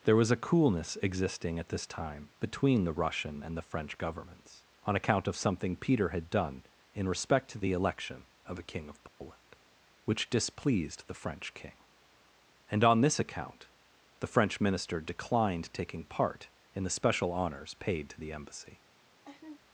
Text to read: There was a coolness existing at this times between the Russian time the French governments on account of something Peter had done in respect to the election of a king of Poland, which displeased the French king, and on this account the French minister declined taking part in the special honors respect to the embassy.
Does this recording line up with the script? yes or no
no